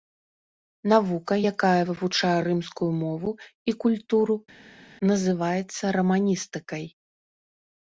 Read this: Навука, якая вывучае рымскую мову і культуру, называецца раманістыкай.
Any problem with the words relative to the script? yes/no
no